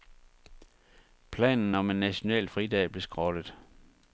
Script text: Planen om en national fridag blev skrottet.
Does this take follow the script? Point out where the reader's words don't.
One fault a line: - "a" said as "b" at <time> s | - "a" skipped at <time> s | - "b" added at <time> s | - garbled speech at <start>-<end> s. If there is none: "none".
none